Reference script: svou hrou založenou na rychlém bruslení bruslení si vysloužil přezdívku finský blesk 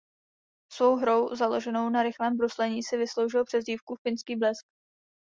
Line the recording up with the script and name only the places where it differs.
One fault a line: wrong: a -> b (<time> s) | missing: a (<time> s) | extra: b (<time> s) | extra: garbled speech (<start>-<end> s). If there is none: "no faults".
missing: bruslení (2.8 s)